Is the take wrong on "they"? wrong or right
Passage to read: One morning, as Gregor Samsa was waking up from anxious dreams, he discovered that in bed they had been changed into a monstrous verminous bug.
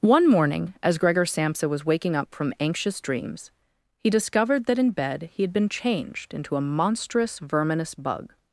wrong